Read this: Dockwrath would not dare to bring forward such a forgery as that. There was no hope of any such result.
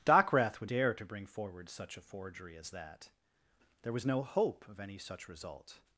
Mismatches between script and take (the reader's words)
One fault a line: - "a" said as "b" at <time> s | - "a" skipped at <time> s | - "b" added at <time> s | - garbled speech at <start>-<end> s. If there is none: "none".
- "not" skipped at 0.7 s